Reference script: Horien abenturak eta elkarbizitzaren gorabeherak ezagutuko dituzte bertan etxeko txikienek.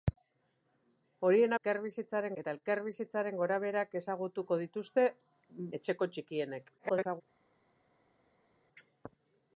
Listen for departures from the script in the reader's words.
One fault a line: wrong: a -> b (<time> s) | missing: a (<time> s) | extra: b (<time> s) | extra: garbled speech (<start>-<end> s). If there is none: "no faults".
wrong: abenturak -> elkarbizitzaren (1.5 s)
missing: bertan (5.1 s)
extra: garbled speech (6.8-7.2 s)